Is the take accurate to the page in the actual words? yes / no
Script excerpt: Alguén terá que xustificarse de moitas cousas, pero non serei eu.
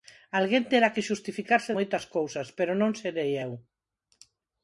no